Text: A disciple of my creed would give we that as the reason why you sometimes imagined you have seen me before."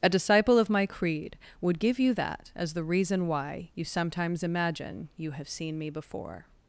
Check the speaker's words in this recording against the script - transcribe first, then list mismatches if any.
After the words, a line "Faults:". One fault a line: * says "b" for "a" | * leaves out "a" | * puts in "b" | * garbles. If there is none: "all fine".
A disciple of my creed would give you that as the reason why you sometimes imagine you have seen me before."
Faults:
* says "you" for "we"
* says "imagine" for "imagined"